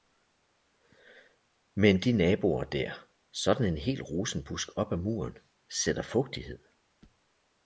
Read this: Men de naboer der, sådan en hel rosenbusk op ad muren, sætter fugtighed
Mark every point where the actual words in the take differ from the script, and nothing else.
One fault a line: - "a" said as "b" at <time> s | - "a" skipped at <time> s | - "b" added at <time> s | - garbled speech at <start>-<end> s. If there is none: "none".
none